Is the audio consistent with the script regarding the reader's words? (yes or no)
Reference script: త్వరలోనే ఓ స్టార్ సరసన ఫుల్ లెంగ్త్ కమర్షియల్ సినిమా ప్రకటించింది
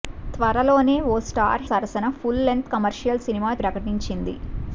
yes